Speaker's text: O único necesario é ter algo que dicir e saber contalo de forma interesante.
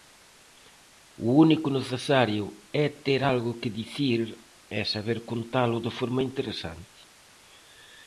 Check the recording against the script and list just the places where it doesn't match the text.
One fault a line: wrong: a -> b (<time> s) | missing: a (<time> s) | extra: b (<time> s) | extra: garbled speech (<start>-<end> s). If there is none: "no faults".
no faults